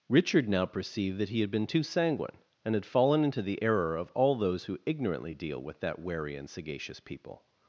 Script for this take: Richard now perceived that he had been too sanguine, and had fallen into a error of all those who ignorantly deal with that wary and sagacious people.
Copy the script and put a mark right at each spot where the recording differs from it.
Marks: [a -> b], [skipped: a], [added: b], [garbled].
Richard now perceived that he had been too sanguine, and had fallen into [a -> the] error of all those who ignorantly deal with that wary and sagacious people.